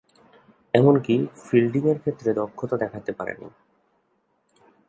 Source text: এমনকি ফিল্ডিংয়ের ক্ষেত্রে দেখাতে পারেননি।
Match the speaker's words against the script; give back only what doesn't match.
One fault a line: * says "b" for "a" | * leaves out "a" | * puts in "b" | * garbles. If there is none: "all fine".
* puts in "দক্ষতা"